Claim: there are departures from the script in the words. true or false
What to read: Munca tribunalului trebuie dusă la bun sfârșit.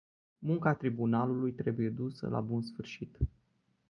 false